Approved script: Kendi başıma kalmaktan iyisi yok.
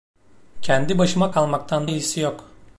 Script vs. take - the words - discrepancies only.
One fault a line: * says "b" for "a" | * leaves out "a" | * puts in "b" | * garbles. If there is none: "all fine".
all fine